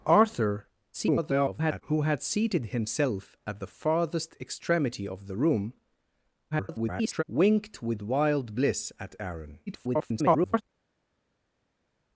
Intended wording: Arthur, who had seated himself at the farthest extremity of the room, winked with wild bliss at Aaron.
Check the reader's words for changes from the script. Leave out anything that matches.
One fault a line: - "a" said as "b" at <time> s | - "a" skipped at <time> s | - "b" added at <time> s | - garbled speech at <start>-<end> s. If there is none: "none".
- garbled speech at 0.9-1.8 s
- garbled speech at 6.5-7.2 s
- garbled speech at 9.7-10.6 s